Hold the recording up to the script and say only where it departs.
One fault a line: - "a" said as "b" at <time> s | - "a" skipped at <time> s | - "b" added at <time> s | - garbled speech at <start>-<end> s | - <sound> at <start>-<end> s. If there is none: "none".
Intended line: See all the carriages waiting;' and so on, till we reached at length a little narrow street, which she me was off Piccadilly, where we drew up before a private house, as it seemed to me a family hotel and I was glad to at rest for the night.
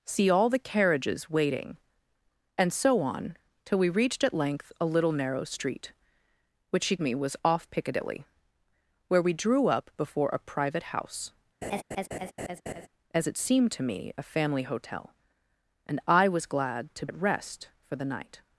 - laugh at 11.6-12.9 s